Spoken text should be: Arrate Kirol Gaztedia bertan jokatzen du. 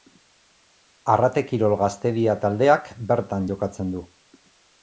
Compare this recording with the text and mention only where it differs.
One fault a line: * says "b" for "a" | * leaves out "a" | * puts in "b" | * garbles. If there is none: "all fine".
* puts in "taldeak"